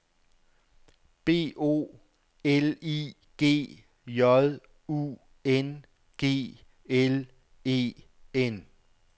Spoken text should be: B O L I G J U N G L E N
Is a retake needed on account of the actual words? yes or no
no